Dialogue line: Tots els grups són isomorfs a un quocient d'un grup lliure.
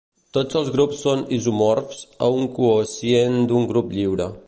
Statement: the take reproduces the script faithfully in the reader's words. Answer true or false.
true